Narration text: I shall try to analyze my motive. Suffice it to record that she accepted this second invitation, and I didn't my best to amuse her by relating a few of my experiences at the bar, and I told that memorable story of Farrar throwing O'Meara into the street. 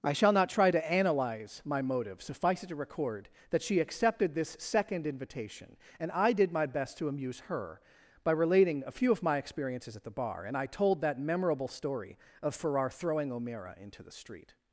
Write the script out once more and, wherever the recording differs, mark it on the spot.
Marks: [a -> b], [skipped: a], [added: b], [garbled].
I shall [added: not] try to analyze my motive. Suffice it to record that she accepted this second invitation, and I [didn't -> did] my best to amuse her by relating a few of my experiences at the bar, and I told that memorable story of Farrar throwing O'Meara into the street.